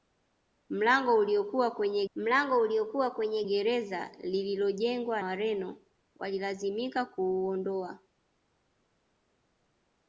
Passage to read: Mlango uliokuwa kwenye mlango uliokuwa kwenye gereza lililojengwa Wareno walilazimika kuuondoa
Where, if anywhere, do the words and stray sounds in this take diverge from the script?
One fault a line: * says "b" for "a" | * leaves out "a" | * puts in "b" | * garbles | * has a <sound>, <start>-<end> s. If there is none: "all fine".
all fine